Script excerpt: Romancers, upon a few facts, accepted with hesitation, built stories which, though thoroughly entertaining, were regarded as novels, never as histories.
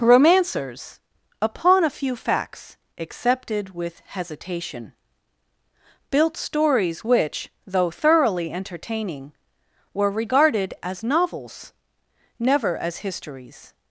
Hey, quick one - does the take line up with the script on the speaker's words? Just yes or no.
yes